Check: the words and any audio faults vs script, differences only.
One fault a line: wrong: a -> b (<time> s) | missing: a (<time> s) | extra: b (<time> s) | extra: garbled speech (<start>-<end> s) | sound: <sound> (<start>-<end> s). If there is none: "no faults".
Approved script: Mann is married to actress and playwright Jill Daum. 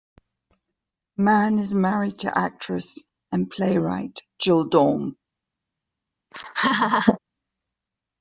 sound: laugh (6.3-7.2 s)